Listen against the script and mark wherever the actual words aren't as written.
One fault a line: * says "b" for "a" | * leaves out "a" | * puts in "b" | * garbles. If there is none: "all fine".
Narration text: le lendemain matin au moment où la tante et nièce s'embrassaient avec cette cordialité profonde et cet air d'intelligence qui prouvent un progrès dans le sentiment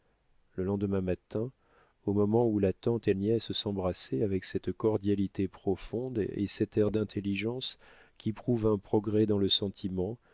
all fine